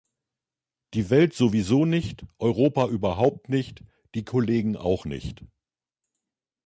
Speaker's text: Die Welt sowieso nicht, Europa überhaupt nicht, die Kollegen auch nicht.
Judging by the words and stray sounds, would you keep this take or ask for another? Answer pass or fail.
pass